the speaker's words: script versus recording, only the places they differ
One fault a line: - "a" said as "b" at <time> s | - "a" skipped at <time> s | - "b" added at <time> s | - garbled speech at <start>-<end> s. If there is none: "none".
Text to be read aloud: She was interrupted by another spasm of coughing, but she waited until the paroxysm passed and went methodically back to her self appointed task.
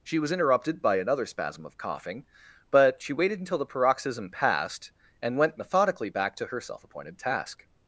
none